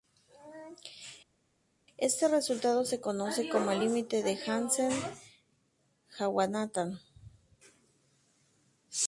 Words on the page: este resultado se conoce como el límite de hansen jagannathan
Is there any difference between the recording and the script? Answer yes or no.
no